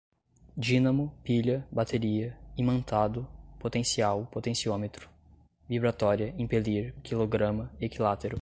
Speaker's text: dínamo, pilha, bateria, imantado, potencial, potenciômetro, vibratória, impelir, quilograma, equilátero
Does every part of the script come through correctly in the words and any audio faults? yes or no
yes